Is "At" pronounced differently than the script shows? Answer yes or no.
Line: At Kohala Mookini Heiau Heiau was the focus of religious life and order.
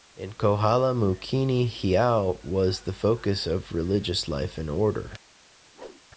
yes